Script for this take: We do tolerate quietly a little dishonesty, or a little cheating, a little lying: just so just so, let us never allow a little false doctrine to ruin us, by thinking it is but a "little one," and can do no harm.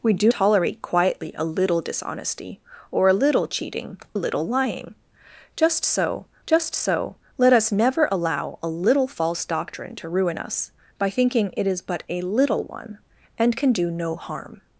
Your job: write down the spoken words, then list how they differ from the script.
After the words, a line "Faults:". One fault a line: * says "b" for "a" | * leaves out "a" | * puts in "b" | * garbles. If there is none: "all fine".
We do tolerate quietly a little dishonesty, or a little cheating, a little lying: just so just so, let us never allow a little false doctrine to ruin us, by thinking it is but a "little one," and can do no harm.
Faults:
all fine